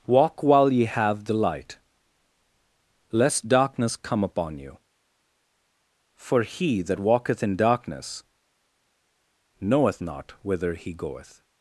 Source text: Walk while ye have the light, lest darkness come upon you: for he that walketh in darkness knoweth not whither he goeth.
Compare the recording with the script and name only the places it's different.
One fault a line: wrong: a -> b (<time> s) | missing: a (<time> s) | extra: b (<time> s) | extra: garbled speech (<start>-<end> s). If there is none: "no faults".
no faults